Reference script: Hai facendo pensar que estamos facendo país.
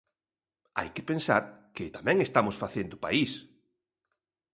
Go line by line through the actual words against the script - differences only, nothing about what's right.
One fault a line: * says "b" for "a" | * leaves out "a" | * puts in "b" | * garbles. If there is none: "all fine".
* says "que" for "facendo"
* puts in "tamén"